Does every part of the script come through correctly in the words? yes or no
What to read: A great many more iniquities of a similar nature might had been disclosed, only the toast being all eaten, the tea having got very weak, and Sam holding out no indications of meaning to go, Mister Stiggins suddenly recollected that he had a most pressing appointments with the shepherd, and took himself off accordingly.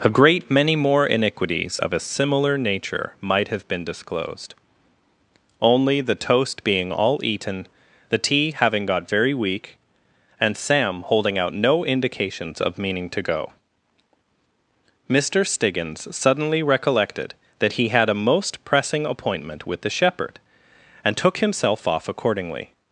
no